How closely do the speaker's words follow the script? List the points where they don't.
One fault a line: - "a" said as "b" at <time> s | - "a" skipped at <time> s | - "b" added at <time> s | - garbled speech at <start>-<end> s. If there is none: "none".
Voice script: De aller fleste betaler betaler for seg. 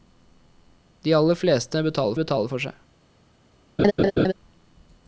none